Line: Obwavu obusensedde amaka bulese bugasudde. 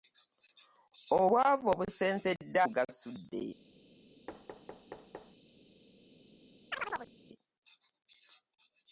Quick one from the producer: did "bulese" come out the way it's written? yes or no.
no